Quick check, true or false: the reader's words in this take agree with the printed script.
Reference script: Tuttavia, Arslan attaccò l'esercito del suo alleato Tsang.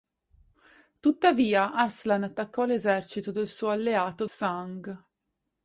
true